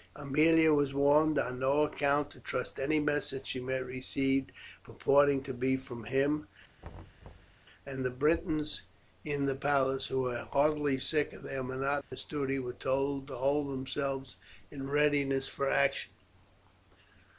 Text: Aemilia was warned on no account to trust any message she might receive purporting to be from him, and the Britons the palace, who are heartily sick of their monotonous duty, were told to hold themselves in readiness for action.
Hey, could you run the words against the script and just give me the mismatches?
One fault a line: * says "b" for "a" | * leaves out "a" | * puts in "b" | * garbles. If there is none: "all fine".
* puts in "in"
* says "were" for "are"